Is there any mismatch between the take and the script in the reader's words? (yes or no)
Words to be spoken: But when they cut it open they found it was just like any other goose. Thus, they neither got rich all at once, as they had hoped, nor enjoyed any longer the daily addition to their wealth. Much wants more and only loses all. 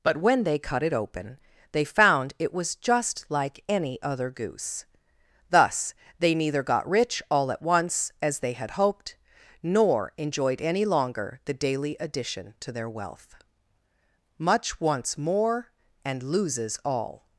yes